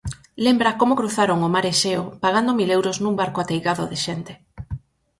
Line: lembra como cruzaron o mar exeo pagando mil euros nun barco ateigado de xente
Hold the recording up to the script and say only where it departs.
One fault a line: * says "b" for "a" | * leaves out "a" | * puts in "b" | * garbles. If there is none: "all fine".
all fine